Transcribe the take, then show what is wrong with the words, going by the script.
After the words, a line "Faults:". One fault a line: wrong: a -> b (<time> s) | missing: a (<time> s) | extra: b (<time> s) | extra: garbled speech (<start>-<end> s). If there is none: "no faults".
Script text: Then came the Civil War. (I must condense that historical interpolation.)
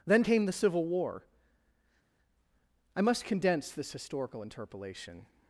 Then came the Civil War. (I must condense this historical interpolation.)
Faults:
wrong: that -> this (3.7 s)